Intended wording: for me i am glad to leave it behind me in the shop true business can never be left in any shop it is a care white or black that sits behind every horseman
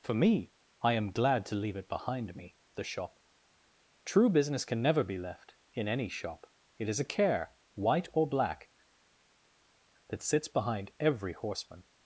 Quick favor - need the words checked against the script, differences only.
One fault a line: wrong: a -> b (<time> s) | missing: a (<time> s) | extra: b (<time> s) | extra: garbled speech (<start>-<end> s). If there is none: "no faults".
missing: in (2.5 s)